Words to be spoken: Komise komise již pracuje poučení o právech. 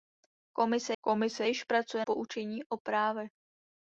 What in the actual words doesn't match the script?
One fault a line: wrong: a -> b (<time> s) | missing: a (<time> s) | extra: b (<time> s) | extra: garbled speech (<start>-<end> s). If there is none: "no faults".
no faults